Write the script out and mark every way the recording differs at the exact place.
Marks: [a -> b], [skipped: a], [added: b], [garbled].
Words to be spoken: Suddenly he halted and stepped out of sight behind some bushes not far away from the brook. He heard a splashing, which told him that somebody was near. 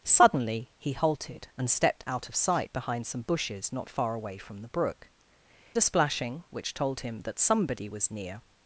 Suddenly he halted and stepped out of sight behind some bushes not far away from the brook. [skipped: He heard] a splashing, which told him that somebody was near.